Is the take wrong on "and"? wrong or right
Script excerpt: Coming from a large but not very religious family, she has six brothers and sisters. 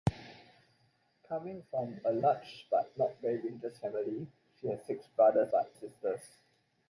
wrong